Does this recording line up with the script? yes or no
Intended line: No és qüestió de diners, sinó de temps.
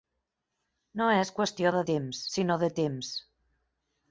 no